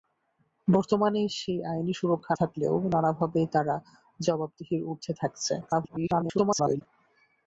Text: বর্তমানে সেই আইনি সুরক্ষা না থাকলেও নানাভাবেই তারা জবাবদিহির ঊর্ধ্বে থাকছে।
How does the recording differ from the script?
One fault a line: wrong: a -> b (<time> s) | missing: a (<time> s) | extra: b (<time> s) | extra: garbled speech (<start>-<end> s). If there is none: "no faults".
missing: না (2.3 s)
extra: garbled speech (5.6-6.8 s)